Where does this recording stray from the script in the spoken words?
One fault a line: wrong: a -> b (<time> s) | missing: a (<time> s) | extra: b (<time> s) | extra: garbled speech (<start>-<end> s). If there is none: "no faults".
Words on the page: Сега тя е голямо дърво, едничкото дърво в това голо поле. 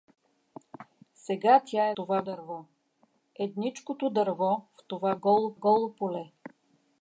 wrong: голямо -> това (1.9 s)
extra: голо (5.5 s)